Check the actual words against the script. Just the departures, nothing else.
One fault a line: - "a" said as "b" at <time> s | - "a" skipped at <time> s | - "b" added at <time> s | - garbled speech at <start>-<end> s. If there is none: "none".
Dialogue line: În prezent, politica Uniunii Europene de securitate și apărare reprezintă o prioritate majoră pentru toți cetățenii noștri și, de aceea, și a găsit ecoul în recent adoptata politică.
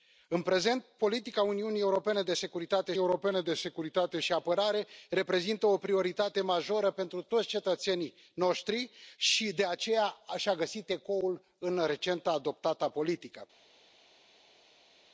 - "Europene de securitate" added at 3.0 s